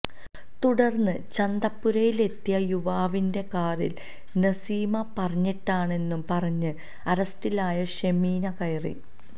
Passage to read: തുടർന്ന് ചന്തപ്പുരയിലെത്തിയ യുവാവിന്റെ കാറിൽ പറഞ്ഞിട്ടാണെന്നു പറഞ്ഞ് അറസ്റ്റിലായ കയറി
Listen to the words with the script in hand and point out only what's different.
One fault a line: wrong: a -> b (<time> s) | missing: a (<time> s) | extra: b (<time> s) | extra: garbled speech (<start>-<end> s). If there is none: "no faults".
extra: നസീമ (4.4 s)
extra: ഷെമീന (8.0 s)